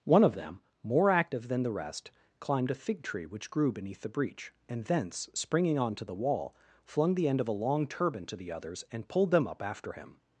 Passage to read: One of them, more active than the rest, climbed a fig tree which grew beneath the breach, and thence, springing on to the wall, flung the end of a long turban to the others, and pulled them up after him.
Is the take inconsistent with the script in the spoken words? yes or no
no